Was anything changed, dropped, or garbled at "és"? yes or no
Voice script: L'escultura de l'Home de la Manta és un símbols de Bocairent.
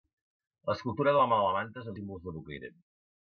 no